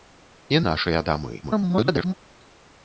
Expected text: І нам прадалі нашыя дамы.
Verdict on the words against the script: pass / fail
fail